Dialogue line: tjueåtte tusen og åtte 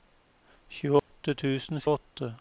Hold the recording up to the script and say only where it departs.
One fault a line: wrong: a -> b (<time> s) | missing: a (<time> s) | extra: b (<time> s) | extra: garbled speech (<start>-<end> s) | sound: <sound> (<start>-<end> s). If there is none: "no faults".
sound: dropout (1.0-1.1 s)